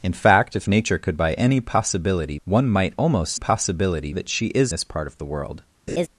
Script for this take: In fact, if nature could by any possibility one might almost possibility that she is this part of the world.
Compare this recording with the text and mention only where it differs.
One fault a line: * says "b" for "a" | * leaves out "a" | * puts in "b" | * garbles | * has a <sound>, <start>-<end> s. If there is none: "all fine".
* has a laugh, 5.9-6.1 s